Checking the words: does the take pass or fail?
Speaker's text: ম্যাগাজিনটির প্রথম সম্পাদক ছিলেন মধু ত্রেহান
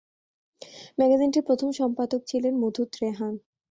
pass